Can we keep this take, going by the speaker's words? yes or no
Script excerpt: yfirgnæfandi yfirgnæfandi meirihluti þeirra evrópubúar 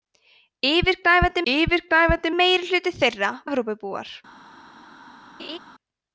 yes